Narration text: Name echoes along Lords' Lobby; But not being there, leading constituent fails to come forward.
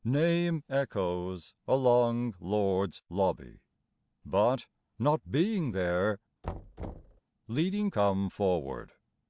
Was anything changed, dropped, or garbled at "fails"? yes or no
yes